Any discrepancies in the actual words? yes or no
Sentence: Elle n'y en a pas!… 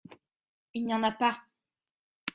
yes